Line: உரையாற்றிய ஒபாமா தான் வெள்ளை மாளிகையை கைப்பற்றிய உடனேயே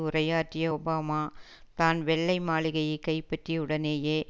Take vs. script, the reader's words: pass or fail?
pass